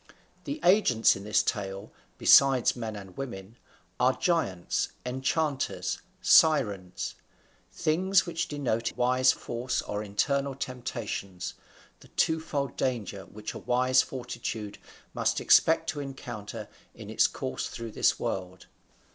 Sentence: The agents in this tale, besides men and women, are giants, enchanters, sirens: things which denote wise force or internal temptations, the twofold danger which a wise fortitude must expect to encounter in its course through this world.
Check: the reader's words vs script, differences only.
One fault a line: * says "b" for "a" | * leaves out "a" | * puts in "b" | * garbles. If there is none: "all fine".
all fine